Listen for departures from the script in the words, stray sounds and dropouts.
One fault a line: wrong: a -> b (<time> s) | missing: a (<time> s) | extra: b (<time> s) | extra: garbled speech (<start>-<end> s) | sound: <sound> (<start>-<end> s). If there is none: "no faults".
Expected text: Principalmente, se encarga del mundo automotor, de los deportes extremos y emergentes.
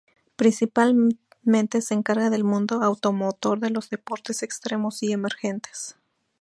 no faults